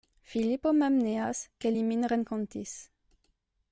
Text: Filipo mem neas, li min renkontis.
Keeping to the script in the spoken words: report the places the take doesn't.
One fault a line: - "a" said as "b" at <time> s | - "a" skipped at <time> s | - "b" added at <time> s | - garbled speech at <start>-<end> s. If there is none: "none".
- "ke" added at 1.6 s